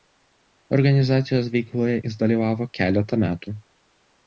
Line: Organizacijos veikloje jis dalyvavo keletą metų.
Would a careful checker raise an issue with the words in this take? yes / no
no